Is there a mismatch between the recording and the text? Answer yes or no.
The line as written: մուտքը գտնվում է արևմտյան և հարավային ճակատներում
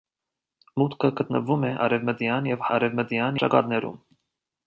yes